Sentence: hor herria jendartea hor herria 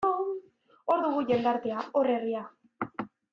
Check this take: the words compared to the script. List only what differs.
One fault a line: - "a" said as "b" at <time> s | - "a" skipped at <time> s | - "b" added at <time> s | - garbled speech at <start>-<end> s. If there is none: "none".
- "herria" said as "dugu" at 1.0 s